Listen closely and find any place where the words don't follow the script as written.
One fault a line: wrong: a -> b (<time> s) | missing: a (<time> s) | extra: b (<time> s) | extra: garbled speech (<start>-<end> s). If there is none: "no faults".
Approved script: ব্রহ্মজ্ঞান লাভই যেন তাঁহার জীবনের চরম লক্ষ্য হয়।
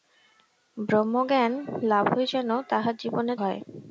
missing: চরম লক্ষ্য (3.4 s)